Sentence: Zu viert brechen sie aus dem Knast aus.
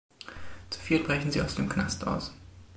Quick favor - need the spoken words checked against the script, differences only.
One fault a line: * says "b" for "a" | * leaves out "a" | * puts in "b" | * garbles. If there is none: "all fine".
all fine